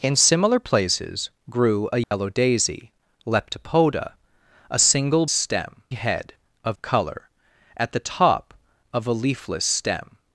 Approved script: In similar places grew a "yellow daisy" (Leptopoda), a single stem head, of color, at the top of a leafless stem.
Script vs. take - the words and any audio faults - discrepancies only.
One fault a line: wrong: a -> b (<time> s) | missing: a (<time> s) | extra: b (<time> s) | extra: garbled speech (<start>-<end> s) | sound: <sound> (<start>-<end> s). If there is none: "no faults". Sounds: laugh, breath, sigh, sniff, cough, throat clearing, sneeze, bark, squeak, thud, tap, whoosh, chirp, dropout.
sound: dropout (2.0-2.1 s)